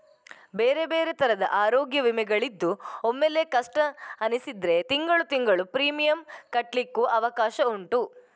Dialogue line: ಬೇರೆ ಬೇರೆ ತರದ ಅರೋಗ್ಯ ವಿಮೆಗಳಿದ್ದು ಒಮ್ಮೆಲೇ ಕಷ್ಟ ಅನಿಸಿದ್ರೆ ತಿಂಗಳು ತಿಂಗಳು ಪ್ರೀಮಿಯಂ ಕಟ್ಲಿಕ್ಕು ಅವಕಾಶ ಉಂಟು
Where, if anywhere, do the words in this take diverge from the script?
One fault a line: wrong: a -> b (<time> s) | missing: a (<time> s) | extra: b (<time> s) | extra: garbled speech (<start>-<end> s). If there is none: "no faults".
no faults